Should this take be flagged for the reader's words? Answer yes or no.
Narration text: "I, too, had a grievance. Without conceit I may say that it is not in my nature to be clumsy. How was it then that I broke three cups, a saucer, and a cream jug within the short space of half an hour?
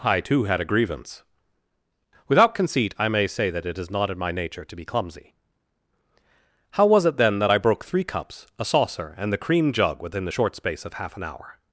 yes